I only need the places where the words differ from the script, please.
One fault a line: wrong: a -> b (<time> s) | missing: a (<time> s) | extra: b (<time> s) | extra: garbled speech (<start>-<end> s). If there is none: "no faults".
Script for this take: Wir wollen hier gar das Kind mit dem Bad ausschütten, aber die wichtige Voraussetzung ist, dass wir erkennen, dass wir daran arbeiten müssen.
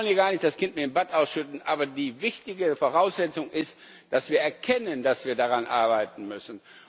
extra: nicht (0.3 s)